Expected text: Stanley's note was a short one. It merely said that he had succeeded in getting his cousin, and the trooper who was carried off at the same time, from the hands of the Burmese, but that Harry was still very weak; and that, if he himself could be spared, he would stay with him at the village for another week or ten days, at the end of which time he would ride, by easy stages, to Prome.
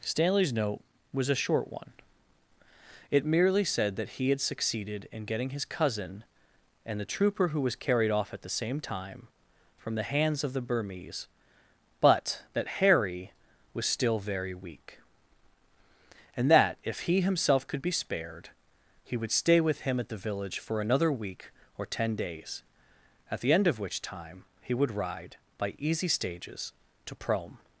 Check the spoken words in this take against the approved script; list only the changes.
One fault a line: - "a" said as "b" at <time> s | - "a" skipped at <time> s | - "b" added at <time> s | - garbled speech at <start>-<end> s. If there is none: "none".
none